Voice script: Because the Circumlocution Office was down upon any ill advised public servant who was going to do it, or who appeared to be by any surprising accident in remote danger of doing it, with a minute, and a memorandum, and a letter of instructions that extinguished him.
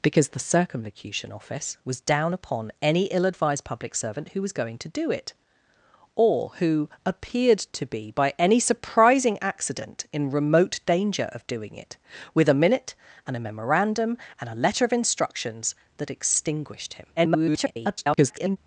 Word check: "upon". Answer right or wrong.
right